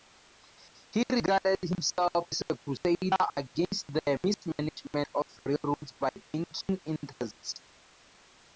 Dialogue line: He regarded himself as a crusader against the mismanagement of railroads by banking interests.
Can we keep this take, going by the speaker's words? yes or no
yes